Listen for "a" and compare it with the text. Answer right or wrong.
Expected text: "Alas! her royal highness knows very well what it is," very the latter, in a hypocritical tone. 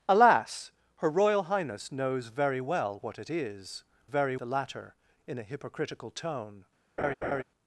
right